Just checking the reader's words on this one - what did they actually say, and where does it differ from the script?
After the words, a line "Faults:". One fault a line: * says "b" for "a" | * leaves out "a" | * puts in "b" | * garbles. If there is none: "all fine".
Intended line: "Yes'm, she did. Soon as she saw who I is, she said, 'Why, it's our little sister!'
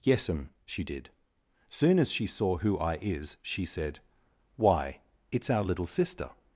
"Yes'm, she did. Soon as she saw who I is, she said, 'Why, it's our little sister!'
Faults:
all fine